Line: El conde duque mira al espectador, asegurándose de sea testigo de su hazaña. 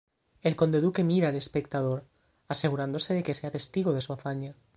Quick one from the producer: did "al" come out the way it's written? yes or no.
yes